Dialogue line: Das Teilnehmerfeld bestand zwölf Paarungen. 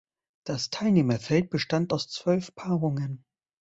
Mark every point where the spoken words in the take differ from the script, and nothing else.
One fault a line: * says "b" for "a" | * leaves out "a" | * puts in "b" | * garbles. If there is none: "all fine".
* puts in "aus"